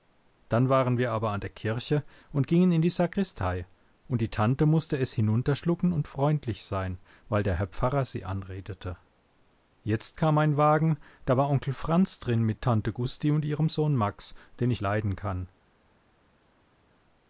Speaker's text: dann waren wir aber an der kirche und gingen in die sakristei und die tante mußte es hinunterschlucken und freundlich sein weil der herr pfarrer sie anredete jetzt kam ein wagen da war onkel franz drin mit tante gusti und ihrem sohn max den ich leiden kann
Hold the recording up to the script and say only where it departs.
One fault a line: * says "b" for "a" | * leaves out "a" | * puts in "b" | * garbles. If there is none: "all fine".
all fine